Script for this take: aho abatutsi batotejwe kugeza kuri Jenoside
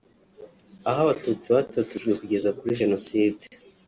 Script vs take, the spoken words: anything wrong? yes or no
no